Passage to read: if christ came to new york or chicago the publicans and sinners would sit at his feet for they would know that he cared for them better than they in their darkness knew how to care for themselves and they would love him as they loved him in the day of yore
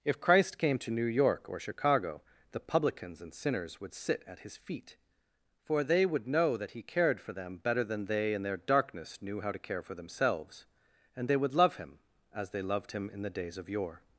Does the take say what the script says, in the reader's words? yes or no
no